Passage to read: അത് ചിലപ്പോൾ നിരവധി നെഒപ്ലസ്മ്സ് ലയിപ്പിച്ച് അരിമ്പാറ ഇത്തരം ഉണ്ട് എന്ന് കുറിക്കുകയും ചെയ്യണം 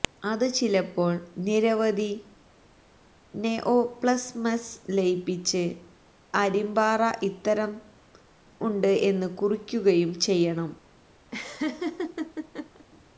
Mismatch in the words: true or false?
false